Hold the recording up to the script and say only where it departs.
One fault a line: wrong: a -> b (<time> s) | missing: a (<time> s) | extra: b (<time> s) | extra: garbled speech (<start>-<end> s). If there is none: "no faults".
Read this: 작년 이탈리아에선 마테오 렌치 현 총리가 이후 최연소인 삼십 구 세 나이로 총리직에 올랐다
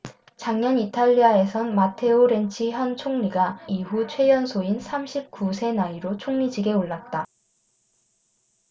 no faults